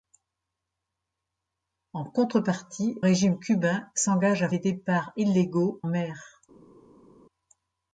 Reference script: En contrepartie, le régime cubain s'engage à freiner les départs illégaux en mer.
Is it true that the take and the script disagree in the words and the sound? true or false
true